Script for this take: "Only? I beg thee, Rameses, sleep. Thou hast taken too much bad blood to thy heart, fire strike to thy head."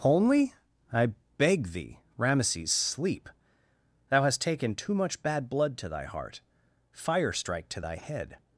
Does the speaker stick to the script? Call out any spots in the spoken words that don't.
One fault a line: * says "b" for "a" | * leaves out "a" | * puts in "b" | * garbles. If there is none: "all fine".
all fine